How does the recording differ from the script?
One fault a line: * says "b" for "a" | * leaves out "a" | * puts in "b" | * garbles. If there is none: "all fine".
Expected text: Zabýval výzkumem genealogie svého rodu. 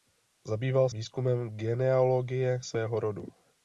all fine